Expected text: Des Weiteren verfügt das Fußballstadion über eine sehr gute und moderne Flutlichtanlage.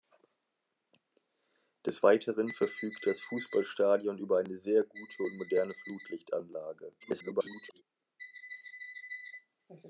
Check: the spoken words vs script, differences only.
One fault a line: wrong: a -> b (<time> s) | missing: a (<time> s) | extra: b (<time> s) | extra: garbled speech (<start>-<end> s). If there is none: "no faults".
extra: garbled speech (7.0-7.8 s)